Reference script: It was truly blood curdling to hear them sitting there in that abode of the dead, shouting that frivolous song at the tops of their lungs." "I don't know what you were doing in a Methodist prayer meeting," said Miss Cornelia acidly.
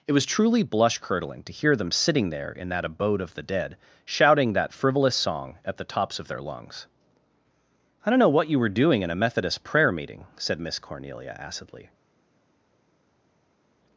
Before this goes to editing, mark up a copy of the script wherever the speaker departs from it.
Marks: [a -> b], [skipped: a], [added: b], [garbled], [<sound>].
It was truly [blood -> blush] curdling to hear them sitting there in that abode of the dead, shouting that frivolous song at the tops of their lungs." "I don't know what you were doing in a Methodist prayer meeting," said Miss Cornelia acidly.